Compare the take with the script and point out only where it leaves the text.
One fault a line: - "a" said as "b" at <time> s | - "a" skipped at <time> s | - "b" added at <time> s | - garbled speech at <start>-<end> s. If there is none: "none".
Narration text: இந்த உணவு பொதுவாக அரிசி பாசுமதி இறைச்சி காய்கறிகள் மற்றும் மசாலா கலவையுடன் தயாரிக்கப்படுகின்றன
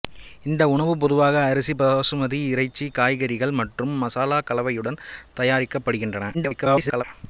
- garbled speech at 6.3-7.0 s